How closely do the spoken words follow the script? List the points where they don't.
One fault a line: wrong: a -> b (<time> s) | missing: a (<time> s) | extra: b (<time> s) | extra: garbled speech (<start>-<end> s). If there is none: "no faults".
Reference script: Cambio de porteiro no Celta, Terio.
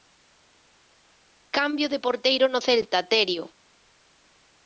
no faults